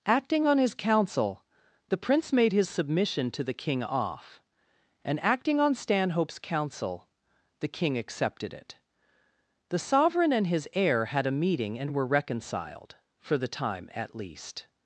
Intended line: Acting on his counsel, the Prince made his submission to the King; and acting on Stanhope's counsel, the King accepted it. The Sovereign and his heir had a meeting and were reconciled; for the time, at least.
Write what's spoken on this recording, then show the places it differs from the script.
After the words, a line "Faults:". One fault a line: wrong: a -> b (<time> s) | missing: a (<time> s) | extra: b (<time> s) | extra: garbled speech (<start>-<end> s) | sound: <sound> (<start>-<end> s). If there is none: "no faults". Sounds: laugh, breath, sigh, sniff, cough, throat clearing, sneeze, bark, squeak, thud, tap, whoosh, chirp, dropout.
Acting on his counsel, the Prince made his submission to the King; off and acting on Stanhope's counsel, the King accepted it. The Sovereign and his heir had a meeting and were reconciled; for the time, at least.
Faults:
extra: off (3.8 s)